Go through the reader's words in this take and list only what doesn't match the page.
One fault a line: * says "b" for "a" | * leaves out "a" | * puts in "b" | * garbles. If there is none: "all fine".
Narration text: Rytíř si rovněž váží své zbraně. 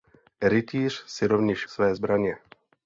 * leaves out "váží"